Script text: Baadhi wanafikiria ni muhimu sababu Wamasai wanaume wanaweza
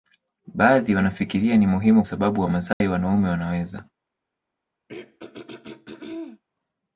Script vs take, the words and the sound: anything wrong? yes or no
yes